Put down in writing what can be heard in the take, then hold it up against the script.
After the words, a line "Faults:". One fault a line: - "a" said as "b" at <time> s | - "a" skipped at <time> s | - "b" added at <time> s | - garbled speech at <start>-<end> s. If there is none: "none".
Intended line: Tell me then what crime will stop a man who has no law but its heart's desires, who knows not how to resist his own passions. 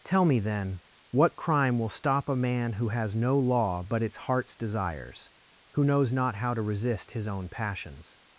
Tell me then what crime will stop a man who has no law but its heart's desires, who knows not how to resist his own passions.
Faults:
none